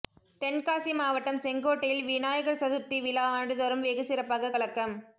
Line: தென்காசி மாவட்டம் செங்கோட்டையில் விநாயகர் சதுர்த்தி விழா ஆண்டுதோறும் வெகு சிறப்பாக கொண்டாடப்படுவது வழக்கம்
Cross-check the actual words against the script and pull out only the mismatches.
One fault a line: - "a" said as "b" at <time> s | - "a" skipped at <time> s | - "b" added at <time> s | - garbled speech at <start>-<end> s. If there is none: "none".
- "கொண்டாடப்படுவது" skipped at 4.5 s